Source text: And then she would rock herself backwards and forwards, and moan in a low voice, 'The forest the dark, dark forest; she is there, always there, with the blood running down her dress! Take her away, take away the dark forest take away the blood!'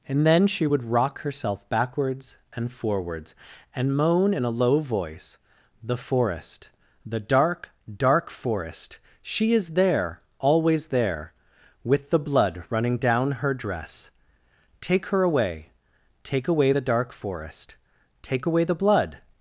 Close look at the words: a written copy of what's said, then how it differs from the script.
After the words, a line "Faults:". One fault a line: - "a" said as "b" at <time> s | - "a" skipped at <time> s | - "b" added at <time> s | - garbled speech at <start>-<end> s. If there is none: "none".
And then she would rock herself backwards and forwards, and moan in a low voice, 'The forest the dark, dark forest; she is there, always there, with the blood running down her dress! Take her away, take away the dark forest take away the blood!'
Faults:
none